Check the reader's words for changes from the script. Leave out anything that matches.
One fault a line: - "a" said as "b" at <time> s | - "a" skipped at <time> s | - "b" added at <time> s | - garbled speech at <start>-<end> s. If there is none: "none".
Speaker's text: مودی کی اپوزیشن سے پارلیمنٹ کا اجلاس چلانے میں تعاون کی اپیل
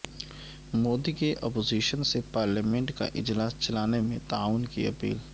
none